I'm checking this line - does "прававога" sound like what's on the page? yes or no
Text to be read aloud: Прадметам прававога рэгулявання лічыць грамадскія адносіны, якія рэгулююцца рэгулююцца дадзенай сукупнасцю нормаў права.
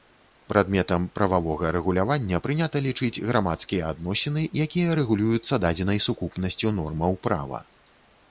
yes